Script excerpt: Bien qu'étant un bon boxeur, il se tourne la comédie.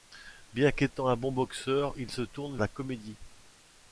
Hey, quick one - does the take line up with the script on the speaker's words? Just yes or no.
yes